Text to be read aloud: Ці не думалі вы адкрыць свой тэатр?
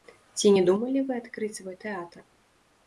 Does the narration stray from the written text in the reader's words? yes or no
no